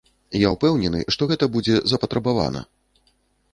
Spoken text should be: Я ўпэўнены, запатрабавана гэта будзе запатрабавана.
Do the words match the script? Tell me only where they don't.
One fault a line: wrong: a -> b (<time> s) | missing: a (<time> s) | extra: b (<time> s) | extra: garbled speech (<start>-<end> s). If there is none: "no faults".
wrong: запатрабавана -> што (1.1 s)